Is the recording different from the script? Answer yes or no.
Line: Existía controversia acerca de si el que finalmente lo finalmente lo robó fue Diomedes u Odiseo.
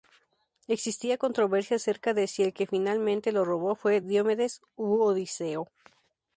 yes